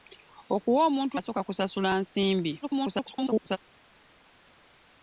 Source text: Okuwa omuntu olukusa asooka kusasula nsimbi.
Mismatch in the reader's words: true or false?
true